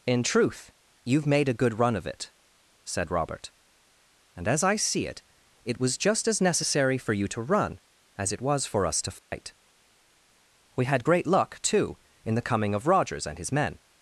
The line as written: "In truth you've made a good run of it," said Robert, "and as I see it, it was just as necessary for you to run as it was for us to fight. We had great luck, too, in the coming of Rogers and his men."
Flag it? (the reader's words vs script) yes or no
no